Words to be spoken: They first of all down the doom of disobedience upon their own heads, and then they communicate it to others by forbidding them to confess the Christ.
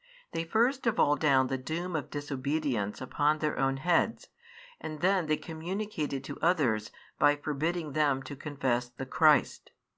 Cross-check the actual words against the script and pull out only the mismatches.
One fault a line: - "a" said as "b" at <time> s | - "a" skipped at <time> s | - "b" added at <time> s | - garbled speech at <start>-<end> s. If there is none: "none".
none